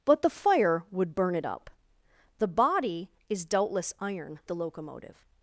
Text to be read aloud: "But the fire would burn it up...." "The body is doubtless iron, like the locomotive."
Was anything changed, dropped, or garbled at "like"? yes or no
yes